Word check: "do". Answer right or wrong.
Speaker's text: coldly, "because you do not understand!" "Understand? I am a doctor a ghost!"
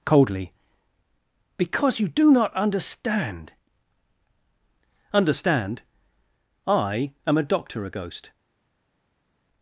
right